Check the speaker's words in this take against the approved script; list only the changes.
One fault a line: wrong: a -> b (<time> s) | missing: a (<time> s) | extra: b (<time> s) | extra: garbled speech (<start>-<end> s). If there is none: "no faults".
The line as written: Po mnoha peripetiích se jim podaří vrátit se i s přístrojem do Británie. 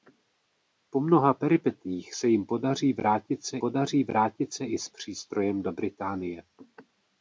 extra: podaří vrátit se (3.6 s)